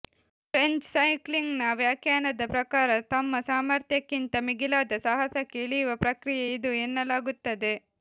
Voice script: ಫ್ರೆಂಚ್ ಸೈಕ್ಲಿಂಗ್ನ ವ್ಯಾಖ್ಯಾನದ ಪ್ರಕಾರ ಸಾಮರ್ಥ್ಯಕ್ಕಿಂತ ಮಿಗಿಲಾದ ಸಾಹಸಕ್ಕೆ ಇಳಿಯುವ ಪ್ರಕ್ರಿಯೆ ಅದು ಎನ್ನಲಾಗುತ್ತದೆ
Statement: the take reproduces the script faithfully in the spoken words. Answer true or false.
false